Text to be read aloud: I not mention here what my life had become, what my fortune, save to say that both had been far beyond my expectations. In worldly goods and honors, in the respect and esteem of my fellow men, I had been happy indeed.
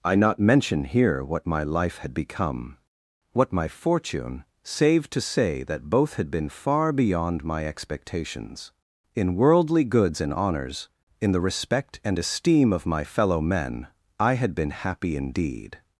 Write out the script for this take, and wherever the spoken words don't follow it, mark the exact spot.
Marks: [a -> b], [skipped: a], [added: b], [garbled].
I not mention here what my life had become, what my fortune, save to say that both had been far beyond my expectations. In worldly goods and honors, in the respect and esteem of my fellow men, I had been happy indeed.